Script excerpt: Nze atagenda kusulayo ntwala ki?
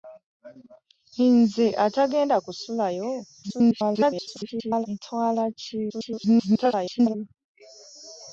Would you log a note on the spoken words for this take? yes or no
yes